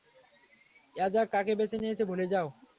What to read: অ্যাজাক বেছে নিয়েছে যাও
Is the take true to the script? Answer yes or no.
no